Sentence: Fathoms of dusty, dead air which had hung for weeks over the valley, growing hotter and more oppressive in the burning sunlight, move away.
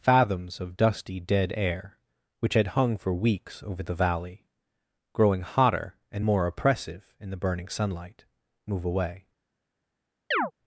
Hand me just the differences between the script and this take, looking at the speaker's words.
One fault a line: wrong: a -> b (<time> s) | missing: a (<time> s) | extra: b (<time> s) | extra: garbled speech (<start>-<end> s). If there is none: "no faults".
no faults